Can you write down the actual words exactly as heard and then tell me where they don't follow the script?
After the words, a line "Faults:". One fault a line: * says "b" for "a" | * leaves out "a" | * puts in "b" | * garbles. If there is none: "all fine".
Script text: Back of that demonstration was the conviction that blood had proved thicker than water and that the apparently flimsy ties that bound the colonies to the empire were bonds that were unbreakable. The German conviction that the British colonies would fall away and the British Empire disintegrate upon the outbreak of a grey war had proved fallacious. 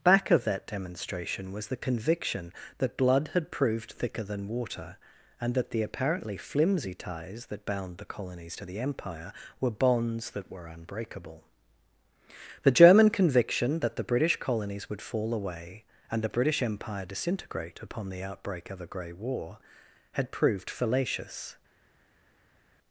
Back of that demonstration was the conviction that blood had proved thicker than water and that the apparently flimsy ties that bound the colonies to the empire were bonds that were unbreakable. The German conviction that the British colonies would fall away and the British Empire disintegrate upon the outbreak of a grey war had proved fallacious.
Faults:
all fine